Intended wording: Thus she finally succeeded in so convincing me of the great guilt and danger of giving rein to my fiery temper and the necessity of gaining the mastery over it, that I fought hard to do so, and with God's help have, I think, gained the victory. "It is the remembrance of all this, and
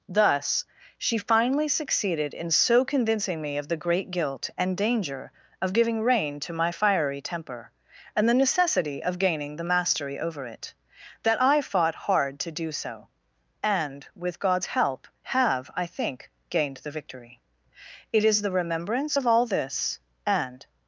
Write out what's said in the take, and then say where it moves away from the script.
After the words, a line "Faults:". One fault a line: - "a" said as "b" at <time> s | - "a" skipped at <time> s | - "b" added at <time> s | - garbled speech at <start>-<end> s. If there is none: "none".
Thus she finally succeeded in so convincing me of the great guilt and danger of giving rein to my fiery temper and the necessity of gaining the mastery over it, that I fought hard to do so, and with God's help have, I think, gained the victory. "It is the remembrance of all this, and
Faults:
none